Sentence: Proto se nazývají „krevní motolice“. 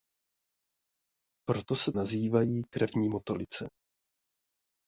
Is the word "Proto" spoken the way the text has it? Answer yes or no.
yes